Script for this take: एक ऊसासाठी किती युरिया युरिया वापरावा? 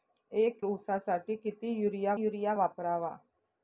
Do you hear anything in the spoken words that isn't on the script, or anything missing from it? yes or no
no